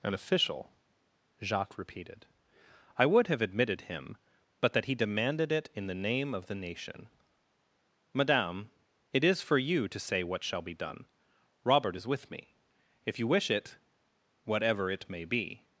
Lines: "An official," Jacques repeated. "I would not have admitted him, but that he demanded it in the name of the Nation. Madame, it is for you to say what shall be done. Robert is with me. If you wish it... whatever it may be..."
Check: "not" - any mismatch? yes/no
yes